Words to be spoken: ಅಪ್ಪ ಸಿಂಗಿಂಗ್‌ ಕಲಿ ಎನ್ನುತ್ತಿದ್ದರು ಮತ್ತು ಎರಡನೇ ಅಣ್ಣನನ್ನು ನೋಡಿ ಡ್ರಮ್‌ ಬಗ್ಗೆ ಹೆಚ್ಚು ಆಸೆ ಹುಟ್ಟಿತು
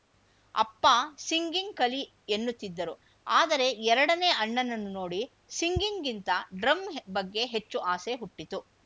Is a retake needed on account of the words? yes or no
yes